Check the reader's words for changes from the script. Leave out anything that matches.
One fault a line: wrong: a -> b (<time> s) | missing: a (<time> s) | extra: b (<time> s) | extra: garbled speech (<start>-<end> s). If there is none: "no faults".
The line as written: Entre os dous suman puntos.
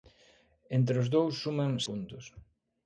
no faults